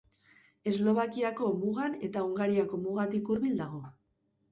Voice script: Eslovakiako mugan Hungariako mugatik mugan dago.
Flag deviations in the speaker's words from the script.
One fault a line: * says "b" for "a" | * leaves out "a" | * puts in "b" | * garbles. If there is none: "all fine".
* puts in "eta"
* says "hurbil" for "mugan"